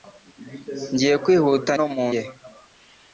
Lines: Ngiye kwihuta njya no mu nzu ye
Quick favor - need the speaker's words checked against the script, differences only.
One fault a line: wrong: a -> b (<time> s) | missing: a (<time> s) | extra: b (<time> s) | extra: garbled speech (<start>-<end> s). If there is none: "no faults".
missing: njya (1.7 s)
missing: nzu (2.1 s)